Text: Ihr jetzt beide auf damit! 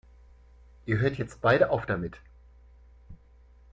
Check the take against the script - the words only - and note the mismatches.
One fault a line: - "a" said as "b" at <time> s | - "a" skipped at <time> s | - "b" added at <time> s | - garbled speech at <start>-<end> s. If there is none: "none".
- "hört" added at 1.0 s